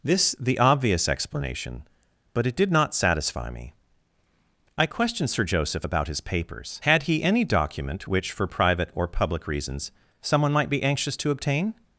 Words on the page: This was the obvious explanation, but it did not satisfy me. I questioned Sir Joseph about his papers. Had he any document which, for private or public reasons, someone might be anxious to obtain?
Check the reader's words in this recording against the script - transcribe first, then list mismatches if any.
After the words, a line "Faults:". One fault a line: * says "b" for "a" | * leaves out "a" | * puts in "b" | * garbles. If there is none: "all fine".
This the obvious explanation, but it did not satisfy me. I questioned Sir Joseph about his papers. Had he any document which, for private or public reasons, someone might be anxious to obtain?
Faults:
* leaves out "was"